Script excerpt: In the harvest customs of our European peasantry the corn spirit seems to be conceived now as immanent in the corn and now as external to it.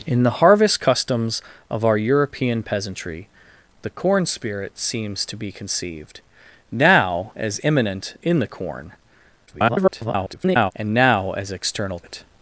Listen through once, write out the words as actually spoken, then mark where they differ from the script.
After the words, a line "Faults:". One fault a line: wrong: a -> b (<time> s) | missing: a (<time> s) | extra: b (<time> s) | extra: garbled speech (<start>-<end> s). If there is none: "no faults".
In the harvest customs of our European peasantry the corn spirit seems to be conceived now as immanent in the corn [garbled] and now as external it.
Faults:
extra: garbled speech (9.5-10.7 s)
missing: to (12.0 s)